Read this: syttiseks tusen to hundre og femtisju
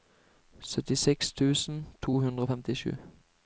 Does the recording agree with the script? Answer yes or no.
yes